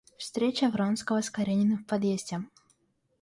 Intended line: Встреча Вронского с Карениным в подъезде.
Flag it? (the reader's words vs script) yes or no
no